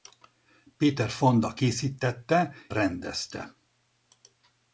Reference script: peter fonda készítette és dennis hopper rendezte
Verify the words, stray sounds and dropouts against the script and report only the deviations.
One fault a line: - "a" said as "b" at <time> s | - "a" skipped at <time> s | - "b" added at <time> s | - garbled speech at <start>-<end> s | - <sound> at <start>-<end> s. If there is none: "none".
- "és dennis hopper" skipped at 2.5 s